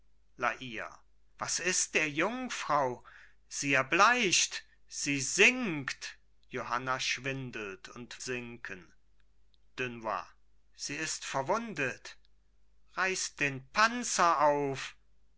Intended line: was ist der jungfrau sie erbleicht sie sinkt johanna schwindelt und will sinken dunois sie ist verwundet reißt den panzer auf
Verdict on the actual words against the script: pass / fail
fail